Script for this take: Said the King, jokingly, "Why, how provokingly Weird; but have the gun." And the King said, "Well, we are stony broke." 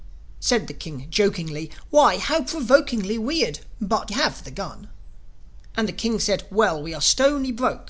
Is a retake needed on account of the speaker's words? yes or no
no